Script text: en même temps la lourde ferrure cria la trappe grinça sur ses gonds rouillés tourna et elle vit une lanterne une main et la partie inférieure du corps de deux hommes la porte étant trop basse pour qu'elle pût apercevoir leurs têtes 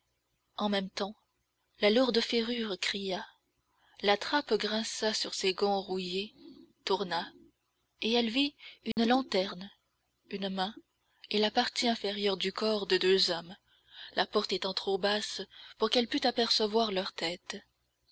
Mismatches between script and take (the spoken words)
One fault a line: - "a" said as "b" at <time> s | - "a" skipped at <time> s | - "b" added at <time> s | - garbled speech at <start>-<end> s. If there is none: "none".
none